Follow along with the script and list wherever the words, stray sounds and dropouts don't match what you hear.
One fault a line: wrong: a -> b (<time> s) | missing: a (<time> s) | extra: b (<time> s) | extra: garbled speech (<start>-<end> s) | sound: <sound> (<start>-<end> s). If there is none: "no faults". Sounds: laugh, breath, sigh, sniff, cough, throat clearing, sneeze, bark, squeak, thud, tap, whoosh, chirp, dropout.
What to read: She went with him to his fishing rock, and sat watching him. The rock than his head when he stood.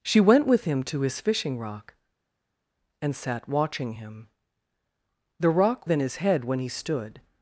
no faults